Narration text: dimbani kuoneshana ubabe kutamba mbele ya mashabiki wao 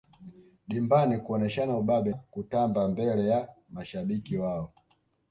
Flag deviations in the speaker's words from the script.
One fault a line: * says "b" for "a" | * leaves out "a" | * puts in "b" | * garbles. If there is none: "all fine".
all fine